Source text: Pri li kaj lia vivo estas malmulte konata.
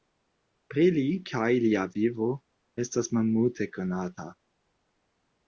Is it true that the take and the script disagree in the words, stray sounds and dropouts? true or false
false